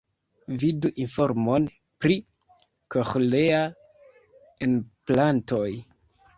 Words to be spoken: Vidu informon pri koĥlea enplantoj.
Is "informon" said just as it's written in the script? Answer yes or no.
yes